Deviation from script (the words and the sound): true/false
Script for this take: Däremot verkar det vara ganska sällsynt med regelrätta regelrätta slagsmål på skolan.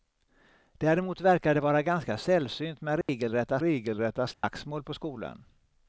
true